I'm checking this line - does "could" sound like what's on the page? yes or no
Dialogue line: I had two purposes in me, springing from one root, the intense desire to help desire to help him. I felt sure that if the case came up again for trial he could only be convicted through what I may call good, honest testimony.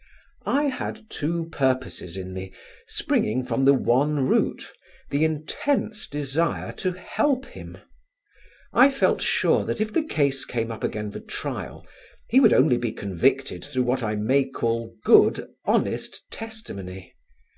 no